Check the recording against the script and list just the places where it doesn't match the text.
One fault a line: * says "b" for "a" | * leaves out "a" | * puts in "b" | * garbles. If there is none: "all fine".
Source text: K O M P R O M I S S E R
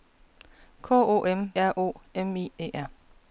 * leaves out "P"
* leaves out "S S"